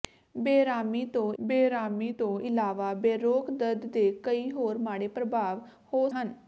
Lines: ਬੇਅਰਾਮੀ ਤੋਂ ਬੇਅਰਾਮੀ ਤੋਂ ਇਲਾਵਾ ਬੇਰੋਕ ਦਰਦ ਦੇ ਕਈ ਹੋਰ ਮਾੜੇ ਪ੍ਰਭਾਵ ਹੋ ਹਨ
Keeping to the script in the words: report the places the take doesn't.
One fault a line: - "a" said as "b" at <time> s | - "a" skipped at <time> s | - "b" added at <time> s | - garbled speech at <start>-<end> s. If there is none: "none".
none